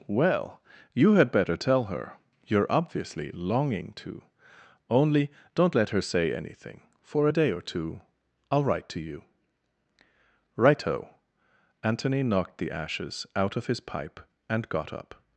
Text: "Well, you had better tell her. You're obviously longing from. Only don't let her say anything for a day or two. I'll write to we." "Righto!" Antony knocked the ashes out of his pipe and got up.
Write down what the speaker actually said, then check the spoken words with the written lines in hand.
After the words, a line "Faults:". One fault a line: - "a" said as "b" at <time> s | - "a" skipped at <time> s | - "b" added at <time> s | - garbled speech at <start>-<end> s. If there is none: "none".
"Well, you had better tell her. You're obviously longing to. Only don't let her say anything for a day or two. I'll write to you." "Righto!" Antony knocked the ashes out of his pipe and got up.
Faults:
- "from" said as "to" at 4.0 s
- "we" said as "you" at 9.0 s